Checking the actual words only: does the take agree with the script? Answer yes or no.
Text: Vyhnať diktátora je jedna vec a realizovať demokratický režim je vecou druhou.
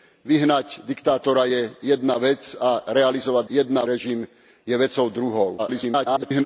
no